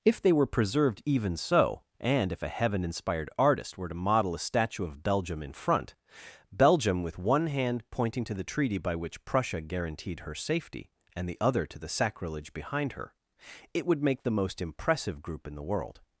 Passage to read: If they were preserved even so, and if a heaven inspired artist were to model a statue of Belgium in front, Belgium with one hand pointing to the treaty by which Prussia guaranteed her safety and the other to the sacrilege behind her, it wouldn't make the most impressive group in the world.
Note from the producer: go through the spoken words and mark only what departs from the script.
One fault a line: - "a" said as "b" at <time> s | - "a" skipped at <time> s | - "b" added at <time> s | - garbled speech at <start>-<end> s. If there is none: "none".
- "wouldn't" said as "would" at 13.8 s